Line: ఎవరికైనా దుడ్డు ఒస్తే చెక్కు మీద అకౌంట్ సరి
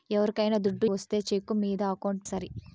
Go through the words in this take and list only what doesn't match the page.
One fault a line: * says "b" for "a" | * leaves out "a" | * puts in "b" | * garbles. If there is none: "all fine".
all fine